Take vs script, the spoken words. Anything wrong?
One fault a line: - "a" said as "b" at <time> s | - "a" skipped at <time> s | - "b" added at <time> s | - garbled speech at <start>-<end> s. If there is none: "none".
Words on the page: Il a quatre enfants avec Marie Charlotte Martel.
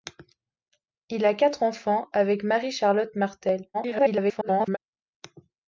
- garbled speech at 3.7-4.8 s